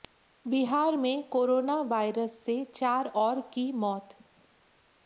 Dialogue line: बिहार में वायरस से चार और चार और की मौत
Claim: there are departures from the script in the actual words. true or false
true